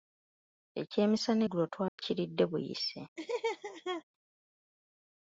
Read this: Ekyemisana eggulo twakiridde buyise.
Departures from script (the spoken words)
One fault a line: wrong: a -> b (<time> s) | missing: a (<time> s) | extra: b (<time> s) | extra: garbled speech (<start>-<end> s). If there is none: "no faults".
no faults